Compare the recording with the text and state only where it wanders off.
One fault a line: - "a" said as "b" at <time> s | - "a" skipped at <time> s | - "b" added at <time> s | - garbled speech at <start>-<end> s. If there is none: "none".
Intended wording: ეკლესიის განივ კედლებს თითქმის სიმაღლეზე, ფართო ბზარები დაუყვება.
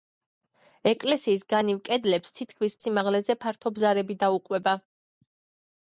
none